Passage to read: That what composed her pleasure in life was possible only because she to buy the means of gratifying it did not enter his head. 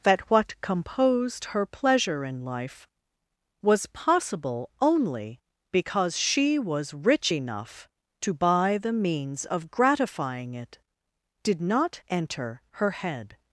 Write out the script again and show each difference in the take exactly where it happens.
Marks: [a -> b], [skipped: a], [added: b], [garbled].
That what composed her pleasure in life was possible only because she [added: was rich enough] to buy the means of gratifying it did not enter [his -> her] head.